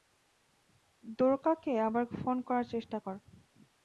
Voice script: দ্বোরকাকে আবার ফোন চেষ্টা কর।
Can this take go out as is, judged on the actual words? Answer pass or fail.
fail